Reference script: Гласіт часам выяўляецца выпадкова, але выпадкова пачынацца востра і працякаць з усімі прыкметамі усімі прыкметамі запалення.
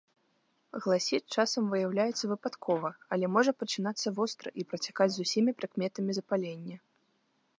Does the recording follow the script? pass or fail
fail